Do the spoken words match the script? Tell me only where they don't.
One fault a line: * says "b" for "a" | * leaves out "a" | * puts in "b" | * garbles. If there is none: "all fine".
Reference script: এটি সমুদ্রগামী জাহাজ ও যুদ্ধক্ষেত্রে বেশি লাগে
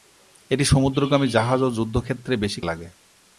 all fine